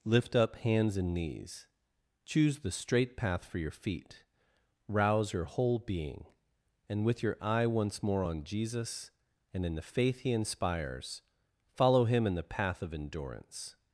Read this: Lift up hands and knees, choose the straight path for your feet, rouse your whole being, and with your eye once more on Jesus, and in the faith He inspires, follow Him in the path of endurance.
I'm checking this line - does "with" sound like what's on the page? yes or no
yes